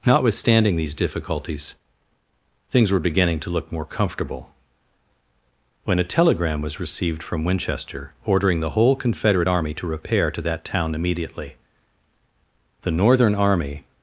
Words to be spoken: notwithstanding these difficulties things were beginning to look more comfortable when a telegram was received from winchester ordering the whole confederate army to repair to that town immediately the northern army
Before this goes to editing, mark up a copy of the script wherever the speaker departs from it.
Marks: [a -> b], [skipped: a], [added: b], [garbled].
notwithstanding these difficulties things were beginning to look more comfortable when a telegram was received from winchester ordering the whole confederate army to repair to that town immediately the northern army